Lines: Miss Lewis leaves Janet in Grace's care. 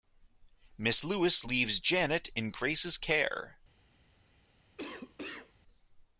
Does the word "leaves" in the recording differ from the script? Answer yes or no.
no